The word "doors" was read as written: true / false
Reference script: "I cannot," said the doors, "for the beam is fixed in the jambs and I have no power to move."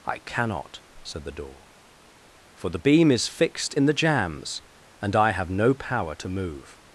false